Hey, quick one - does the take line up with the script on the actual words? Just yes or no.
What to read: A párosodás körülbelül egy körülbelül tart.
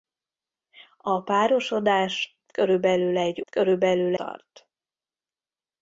yes